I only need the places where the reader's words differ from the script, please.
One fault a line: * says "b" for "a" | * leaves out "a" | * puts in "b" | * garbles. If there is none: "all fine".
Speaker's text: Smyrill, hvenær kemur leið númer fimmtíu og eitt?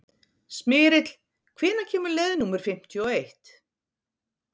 all fine